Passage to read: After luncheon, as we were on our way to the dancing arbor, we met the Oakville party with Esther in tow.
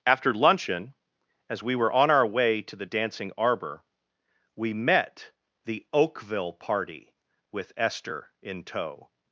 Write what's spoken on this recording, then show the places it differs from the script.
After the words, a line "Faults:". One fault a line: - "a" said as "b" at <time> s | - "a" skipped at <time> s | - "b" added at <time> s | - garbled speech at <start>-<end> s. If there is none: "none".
After luncheon, as we were on our way to the dancing arbor, we met the Oakville party with Esther in tow.
Faults:
none